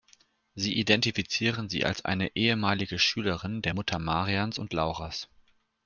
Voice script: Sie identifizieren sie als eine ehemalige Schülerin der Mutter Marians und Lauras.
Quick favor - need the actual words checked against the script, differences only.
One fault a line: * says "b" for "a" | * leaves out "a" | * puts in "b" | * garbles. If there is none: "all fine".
all fine